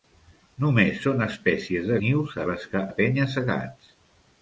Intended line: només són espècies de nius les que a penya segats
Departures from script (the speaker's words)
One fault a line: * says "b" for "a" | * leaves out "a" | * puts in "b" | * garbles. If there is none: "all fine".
all fine